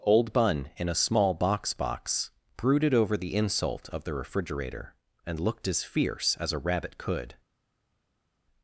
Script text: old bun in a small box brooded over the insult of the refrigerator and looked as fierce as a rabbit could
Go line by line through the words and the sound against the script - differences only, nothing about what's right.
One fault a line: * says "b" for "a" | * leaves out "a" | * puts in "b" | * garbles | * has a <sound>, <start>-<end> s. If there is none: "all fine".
* puts in "box"